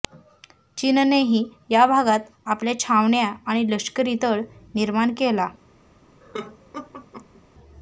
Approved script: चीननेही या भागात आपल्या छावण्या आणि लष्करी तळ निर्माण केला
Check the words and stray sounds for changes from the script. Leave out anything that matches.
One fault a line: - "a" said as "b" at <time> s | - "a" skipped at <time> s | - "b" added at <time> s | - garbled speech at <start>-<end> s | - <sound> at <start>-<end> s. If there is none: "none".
- laugh at 6.2-7.4 s